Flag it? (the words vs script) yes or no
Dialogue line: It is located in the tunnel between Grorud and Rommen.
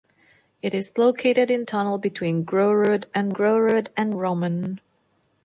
yes